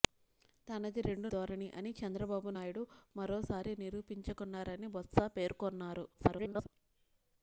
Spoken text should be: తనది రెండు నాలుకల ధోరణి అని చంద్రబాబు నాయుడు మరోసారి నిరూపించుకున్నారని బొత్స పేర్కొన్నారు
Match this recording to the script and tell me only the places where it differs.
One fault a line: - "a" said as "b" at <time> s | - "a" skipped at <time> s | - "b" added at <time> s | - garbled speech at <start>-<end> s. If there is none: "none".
- "నాలుకల" skipped at 1.3 s
- garbled speech at 6.1-6.7 s